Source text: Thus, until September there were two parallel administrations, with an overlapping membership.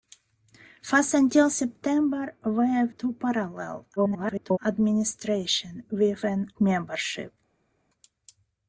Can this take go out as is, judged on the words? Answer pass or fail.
fail